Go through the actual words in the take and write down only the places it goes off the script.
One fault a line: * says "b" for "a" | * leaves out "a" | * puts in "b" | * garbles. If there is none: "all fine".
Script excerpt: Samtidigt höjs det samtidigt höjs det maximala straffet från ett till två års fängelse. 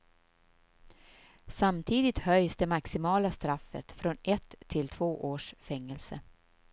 * leaves out "samtidigt höjs det"